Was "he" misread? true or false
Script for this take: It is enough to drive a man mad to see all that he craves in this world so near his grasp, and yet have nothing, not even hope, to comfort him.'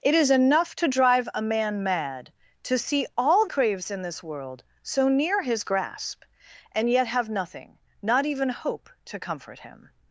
true